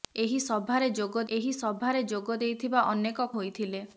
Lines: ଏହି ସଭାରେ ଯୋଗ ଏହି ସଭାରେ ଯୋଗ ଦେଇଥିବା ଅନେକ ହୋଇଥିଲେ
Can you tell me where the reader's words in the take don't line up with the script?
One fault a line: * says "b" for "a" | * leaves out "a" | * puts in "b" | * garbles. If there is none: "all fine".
all fine